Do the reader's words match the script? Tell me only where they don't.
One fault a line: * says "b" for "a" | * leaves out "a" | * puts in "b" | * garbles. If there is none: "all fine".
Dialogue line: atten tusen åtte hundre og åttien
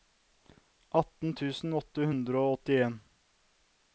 all fine